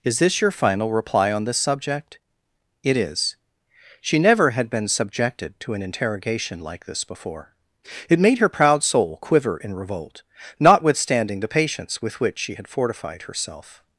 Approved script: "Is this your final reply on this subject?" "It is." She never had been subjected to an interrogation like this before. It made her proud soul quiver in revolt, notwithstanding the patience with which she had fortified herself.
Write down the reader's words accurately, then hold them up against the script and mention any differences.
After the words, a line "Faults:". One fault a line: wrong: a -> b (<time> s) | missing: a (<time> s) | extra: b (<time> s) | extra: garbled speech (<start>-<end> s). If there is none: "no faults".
"Is this your final reply on this subject?" "It is." She never had been subjected to an interrogation like this before. It made her proud soul quiver in revolt, notwithstanding the patience with which she had fortified herself.
Faults:
no faults